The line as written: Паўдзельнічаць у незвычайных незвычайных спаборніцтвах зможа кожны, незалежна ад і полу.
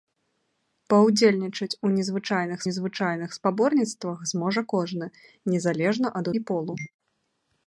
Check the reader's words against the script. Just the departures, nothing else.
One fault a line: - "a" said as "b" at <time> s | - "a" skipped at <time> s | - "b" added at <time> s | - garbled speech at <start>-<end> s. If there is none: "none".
none